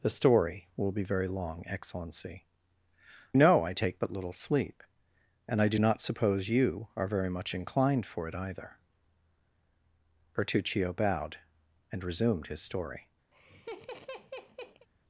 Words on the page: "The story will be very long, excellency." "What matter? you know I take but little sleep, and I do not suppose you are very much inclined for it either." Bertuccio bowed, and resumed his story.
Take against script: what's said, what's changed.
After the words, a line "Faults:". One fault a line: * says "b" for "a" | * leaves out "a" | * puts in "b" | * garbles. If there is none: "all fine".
"The story will be very long, excellency." "Know I take but little sleep, and I do not suppose you are very much inclined for it either." Bertuccio bowed, and resumed his story.
Faults:
* leaves out "What matter you"